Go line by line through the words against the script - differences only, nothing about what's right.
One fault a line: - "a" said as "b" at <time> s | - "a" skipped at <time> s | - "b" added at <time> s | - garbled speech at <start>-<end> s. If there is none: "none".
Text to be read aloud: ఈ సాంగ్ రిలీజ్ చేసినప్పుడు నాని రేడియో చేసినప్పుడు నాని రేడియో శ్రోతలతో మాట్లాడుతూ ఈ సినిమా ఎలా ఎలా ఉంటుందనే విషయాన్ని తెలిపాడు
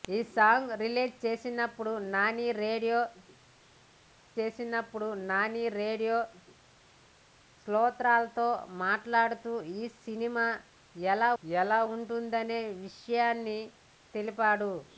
none